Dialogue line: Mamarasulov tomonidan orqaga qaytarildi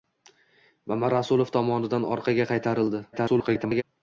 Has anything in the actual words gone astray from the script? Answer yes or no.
yes